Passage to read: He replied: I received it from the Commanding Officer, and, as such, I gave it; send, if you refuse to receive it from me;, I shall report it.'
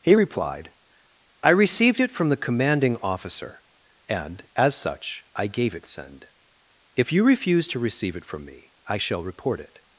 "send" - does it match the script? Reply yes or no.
yes